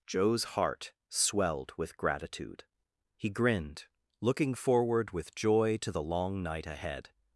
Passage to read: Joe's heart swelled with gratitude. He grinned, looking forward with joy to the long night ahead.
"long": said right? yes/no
yes